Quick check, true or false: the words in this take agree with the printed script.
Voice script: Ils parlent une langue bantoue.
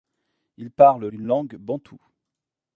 true